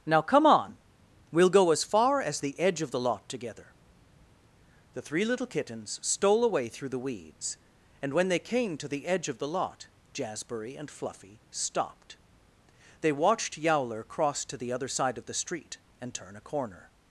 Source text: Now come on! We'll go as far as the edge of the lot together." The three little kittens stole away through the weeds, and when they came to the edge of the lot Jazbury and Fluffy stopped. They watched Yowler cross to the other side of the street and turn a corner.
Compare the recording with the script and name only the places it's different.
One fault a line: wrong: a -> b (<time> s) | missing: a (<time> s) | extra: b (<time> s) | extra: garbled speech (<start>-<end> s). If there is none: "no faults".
no faults